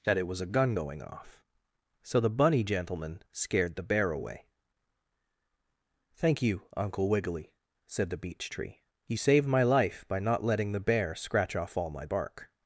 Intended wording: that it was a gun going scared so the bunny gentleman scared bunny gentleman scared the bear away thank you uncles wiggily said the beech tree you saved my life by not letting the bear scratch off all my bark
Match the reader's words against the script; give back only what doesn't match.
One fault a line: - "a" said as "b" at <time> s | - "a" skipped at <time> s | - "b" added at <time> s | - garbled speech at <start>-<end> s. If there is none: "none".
- "scared" said as "off" at 1.0 s
- "bunny gentleman scared" skipped at 3.8 s
- "uncles" said as "uncle" at 6.8 s